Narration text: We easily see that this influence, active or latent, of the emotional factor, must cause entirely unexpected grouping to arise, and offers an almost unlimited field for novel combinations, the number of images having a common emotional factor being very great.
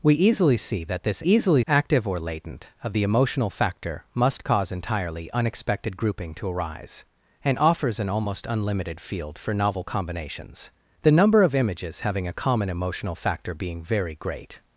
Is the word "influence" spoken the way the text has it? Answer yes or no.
no